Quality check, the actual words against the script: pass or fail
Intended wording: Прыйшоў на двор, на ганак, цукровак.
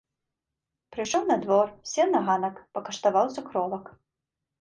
fail